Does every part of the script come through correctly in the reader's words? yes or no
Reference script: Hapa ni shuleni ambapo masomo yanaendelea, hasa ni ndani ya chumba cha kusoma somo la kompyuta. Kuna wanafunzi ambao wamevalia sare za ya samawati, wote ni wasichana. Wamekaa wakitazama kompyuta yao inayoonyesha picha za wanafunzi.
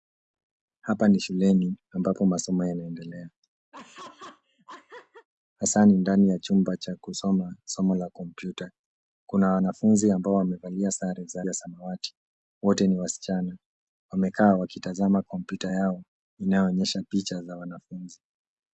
yes